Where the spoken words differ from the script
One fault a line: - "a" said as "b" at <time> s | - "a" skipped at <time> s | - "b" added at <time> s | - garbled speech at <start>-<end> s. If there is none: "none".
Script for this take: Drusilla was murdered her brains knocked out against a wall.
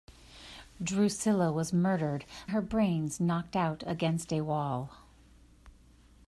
none